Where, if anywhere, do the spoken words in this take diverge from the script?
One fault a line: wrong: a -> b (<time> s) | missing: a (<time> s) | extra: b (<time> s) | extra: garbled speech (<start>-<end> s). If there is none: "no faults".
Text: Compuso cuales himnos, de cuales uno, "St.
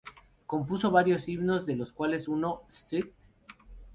wrong: cuales -> varios (0.9 s)
extra: los (1.8 s)